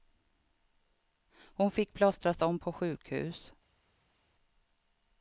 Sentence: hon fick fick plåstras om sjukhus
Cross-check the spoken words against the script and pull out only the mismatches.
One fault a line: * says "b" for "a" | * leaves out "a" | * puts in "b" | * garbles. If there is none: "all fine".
* leaves out "fick"
* puts in "på"